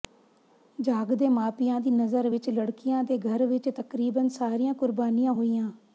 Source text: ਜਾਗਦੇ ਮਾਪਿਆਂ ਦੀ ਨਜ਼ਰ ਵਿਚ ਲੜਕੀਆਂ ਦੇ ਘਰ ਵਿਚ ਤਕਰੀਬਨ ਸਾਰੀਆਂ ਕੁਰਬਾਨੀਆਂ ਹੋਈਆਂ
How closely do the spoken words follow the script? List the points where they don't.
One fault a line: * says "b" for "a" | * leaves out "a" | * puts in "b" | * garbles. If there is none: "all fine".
all fine